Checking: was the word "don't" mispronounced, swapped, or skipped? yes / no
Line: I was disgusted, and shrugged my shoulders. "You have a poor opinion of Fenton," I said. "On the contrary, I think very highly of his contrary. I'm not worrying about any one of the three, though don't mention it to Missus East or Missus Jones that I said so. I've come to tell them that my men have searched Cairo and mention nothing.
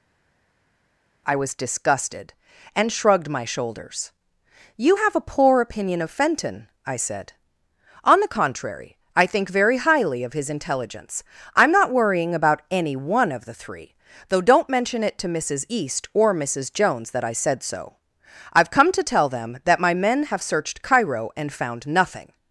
no